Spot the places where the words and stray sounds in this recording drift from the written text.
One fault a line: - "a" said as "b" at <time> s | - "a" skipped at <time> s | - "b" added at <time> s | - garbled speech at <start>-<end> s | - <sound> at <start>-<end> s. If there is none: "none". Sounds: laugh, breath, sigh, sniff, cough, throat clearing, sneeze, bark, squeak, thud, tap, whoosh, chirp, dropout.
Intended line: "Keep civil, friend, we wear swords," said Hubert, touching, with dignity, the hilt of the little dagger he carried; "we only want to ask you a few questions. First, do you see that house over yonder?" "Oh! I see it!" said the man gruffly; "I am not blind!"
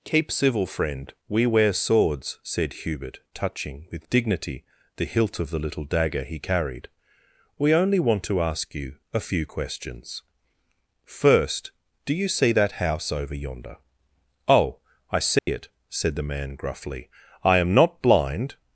- dropout at 15.4-15.5 s